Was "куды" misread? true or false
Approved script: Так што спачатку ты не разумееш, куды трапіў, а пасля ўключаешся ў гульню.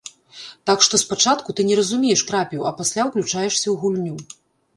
true